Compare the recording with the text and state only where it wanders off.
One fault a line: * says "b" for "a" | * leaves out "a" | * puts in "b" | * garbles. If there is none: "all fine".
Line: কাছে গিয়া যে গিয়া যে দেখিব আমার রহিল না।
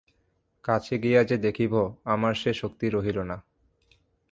* says "দেখিব আমার সে শক্তি" for "গিয়া যে দেখিব আমার"